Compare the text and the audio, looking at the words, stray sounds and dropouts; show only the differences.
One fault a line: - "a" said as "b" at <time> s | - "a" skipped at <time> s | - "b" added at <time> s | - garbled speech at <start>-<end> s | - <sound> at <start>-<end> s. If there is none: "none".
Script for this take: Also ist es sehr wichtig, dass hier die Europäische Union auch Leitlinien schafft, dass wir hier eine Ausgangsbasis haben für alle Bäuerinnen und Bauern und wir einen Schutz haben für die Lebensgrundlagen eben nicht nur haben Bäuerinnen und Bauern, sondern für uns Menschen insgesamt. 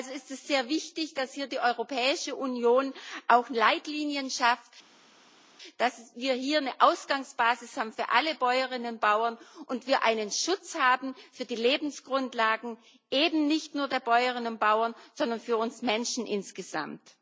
- "haben" said as "der" at 13.9 s